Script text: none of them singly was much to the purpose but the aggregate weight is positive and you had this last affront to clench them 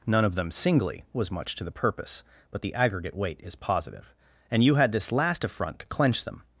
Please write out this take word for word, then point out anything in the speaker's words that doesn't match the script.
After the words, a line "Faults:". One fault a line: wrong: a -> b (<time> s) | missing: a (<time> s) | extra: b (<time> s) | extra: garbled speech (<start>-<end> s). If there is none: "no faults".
none of them singly was much to the purpose but the aggregate weight is positive and you had this last affront to clench them
Faults:
no faults